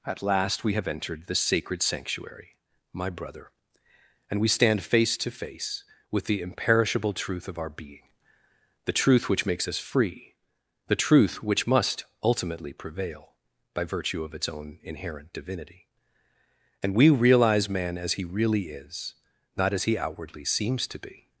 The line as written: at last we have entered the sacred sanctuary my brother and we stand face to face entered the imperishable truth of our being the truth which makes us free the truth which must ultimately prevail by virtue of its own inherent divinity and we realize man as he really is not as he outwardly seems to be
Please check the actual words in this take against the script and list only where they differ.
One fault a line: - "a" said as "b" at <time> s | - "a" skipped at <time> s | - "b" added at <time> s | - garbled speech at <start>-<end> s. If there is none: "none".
- "entered" said as "with" at 6.1 s